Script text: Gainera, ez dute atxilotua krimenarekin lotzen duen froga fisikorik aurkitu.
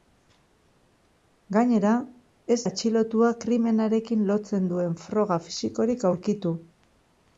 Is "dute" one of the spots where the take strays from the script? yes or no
yes